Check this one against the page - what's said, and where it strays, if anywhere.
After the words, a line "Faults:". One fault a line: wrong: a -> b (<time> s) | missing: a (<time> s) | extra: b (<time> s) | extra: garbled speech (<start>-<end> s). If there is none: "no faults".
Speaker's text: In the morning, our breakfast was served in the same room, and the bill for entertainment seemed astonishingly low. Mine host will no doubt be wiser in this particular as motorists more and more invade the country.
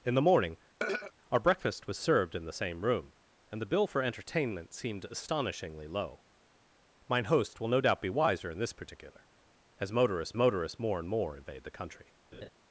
In the morning, our breakfast was served in the same room, and the bill for entertainment seemed astonishingly low. Mine host will no doubt be wiser in this particular as motorists motorists more and more invade the country.
Faults:
extra: motorists (10.4 s)